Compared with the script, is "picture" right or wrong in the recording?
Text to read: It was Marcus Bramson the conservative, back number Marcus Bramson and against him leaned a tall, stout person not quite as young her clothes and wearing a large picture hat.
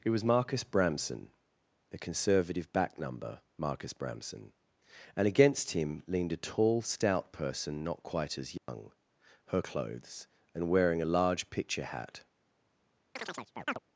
right